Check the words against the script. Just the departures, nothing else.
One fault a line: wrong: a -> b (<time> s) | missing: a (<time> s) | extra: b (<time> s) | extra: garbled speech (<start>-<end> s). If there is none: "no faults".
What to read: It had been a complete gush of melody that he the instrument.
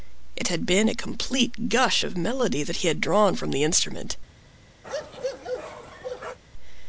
extra: had drawn from (2.9 s)